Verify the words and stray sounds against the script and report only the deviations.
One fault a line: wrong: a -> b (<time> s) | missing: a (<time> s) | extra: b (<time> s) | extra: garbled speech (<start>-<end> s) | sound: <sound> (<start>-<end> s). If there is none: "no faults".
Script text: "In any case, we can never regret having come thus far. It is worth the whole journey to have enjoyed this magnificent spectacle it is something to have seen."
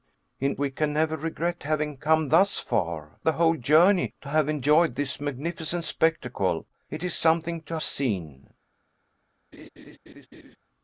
missing: any case (0.6 s)
missing: It is worth (3.2 s)
missing: have (7.8 s)
sound: laugh (9.5-10.6 s)